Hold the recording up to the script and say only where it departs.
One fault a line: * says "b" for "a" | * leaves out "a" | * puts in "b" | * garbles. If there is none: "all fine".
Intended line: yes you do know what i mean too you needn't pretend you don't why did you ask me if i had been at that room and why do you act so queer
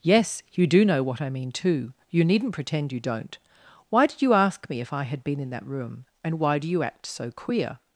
* says "in" for "at"